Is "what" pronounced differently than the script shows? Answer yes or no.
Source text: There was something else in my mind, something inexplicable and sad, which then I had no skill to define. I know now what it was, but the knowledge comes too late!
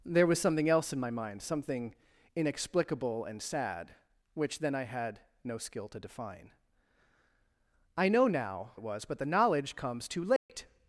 yes